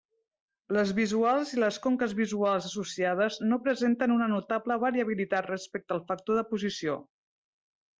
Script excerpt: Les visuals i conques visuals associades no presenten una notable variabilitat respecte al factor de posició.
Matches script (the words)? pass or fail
fail